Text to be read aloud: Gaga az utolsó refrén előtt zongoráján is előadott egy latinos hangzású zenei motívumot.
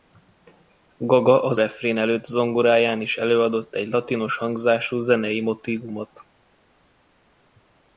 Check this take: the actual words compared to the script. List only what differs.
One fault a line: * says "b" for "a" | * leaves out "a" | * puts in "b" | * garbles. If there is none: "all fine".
* leaves out "utolsó"